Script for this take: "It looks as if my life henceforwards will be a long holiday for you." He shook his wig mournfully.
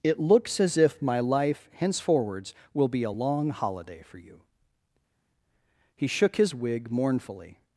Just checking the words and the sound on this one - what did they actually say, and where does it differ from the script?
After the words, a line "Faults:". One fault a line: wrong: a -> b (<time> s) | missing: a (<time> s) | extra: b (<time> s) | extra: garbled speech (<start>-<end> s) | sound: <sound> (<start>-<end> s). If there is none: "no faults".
"It looks as if my life henceforwards will be a long holiday for you." He shook his wig mournfully.
Faults:
no faults